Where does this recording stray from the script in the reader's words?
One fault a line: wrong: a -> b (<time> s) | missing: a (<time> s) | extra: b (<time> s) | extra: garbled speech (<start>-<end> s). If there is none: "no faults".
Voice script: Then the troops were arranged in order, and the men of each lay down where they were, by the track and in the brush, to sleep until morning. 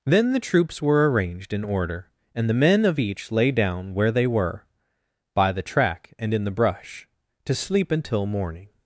no faults